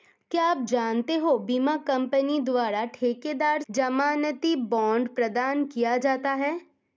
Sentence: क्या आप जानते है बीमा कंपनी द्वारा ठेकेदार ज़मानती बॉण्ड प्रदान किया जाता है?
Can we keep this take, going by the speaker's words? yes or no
yes